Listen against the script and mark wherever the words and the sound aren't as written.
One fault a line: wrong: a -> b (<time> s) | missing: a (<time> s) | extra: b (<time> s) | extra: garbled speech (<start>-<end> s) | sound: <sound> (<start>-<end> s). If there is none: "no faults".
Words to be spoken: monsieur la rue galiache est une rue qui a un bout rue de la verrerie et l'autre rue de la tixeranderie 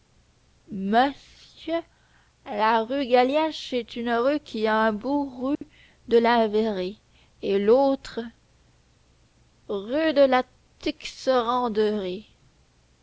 sound: dropout (5.5-5.6 s)